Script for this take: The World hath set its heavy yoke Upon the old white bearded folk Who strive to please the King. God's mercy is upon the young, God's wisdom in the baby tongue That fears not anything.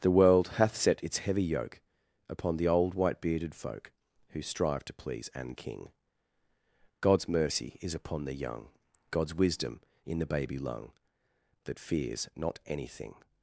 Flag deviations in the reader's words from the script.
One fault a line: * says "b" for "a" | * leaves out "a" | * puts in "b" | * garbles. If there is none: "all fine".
* says "an" for "the"
* says "lung" for "tongue"